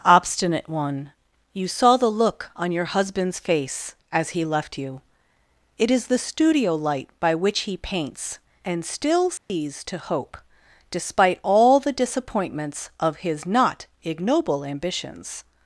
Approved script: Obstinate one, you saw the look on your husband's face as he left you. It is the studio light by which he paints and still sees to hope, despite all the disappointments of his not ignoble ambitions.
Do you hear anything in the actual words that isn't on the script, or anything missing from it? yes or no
no